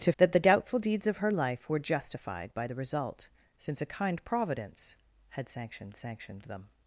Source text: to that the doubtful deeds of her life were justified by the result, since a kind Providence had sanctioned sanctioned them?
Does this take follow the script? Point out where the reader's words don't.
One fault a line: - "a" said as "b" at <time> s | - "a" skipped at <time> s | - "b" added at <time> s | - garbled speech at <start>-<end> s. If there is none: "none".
none